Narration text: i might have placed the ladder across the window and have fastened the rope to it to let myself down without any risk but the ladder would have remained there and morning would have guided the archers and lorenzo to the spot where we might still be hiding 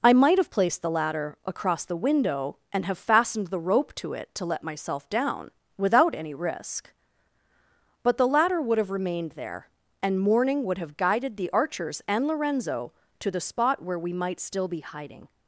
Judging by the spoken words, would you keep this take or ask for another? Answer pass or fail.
pass